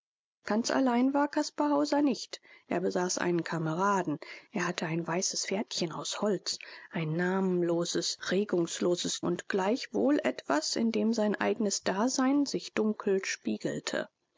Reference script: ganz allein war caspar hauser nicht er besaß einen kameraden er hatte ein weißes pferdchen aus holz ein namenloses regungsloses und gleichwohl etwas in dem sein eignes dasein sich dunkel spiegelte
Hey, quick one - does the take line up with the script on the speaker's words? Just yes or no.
yes